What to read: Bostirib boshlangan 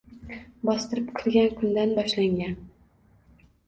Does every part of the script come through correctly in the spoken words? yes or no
no